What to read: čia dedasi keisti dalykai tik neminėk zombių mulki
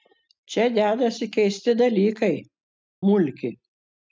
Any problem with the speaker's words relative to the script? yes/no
yes